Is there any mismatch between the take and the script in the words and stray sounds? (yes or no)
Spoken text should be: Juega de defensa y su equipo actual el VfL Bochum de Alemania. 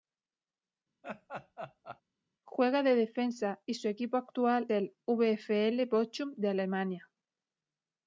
yes